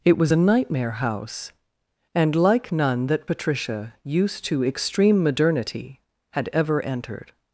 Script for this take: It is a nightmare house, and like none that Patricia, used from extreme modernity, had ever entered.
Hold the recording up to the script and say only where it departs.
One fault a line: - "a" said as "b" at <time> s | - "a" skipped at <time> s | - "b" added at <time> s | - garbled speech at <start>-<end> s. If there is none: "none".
- "is" said as "was" at 0.2 s
- "from" said as "to" at 4.4 s